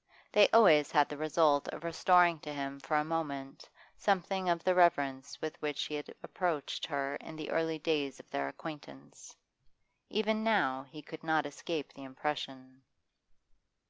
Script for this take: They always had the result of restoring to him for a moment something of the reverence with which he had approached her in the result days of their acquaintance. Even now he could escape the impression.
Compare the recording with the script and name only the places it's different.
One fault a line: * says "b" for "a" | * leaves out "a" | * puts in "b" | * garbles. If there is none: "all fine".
* says "early" for "result"
* puts in "not"